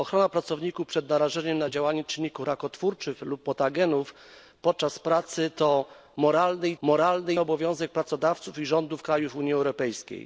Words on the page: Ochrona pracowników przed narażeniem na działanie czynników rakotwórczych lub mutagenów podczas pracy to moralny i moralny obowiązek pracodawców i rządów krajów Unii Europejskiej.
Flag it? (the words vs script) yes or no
no